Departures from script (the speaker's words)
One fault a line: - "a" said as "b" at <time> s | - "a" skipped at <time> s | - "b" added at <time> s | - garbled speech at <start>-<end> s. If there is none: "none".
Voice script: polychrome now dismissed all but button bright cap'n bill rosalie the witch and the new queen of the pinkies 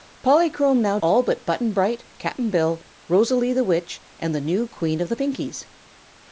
- "dismissed" skipped at 1.0 s